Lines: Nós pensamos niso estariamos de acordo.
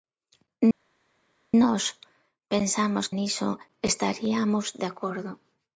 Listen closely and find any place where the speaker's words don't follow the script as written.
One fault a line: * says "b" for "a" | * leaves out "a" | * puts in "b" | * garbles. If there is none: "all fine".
all fine